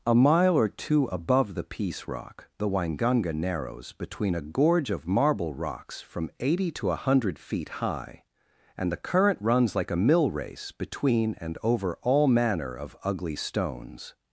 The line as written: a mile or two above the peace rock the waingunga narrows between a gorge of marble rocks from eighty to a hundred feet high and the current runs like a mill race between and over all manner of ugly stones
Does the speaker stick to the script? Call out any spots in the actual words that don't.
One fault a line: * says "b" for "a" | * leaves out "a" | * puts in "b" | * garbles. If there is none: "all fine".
all fine